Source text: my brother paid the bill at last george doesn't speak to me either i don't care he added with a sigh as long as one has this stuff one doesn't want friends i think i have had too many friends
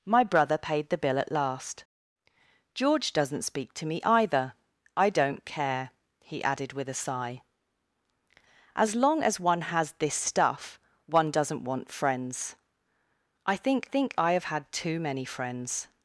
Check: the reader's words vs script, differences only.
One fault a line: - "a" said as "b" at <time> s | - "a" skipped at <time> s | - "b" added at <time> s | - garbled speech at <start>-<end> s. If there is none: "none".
- "think" added at 13.9 s